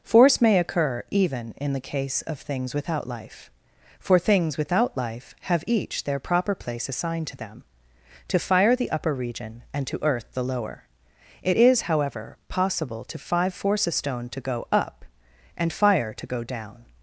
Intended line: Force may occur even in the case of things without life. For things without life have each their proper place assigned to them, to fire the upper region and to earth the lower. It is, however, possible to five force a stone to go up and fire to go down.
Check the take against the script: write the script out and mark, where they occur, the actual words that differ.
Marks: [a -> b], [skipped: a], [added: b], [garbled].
Force may occur even in the case of things without life. For things without life have each their proper place assigned to them, to fire the upper region and to earth the lower. It is, however, possible to five force a stone to go up and fire to go down.